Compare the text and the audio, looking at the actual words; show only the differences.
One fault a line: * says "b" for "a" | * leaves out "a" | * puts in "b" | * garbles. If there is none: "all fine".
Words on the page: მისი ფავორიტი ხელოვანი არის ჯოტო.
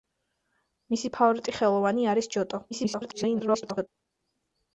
* garbles